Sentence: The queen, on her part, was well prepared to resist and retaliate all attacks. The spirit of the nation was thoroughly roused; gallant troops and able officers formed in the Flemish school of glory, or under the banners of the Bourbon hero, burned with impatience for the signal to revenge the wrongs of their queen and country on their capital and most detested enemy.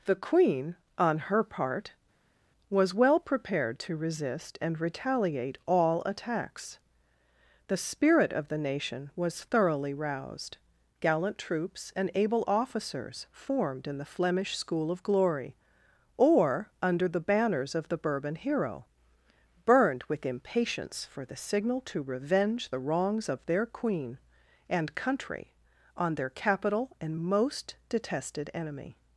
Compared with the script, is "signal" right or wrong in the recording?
right